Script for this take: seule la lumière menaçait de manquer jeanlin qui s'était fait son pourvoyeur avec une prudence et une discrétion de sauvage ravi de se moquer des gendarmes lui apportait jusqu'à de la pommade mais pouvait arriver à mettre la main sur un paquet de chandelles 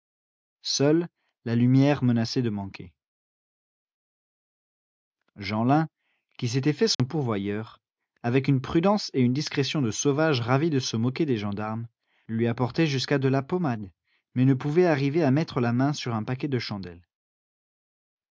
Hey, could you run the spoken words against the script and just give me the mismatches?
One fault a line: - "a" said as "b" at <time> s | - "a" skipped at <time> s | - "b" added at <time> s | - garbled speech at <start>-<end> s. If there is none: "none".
- "ne" added at 14.4 s